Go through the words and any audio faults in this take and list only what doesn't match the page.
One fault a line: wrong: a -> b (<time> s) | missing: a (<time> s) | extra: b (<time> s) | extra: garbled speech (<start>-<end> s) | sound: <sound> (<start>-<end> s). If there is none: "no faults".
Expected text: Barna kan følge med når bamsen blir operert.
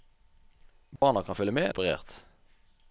sound: dropout (1.0-1.0 s)
missing: når bamsen blir (1.7 s)